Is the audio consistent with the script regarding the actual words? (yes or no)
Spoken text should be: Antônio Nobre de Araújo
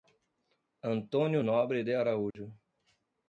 yes